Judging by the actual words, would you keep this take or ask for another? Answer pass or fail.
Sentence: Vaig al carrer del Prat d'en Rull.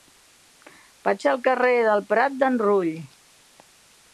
pass